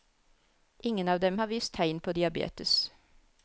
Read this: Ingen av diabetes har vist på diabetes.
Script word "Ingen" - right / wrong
right